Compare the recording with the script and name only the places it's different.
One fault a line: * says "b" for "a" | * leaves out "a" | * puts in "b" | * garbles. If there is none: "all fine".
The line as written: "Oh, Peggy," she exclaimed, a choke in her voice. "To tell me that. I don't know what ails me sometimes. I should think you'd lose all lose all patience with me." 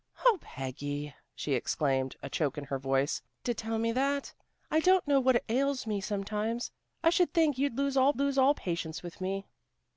all fine